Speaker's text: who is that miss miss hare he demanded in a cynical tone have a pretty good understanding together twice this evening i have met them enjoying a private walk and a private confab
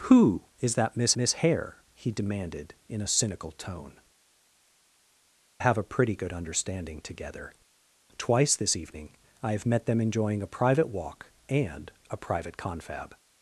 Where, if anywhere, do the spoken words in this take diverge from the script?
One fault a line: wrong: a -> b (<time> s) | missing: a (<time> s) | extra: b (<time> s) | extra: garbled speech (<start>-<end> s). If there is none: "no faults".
no faults